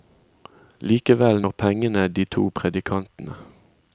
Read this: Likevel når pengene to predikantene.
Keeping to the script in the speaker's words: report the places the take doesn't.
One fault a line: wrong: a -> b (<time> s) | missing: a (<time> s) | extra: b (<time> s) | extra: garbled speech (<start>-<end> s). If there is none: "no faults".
extra: de (2.1 s)